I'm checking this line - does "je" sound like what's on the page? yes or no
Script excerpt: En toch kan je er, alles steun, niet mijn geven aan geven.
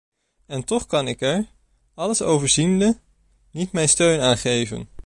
no